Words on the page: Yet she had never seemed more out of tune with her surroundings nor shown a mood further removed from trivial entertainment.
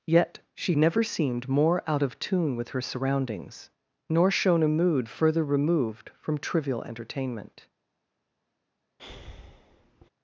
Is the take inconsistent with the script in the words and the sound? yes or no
yes